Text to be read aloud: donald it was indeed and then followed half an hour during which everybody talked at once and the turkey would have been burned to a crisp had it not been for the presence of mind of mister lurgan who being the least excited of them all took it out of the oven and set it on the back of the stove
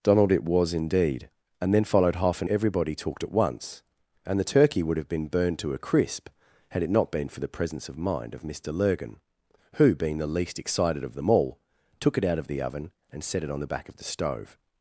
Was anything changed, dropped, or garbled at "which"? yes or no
yes